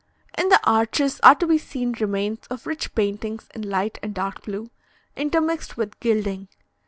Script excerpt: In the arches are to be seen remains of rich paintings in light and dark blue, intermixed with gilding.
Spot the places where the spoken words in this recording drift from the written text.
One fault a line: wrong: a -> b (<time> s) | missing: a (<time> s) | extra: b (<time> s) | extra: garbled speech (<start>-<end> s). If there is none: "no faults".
no faults